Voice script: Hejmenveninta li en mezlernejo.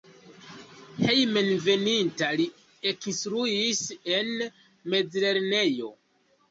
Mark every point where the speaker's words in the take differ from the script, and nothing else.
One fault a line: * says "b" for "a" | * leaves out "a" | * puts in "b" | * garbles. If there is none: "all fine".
* puts in "ekinstruis"